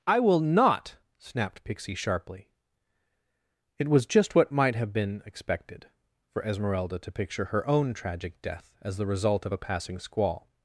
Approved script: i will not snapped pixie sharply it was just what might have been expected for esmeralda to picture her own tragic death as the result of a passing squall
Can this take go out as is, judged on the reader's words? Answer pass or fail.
pass